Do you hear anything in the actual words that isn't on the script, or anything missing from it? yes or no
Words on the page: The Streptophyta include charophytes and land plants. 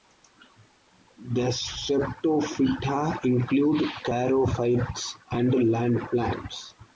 no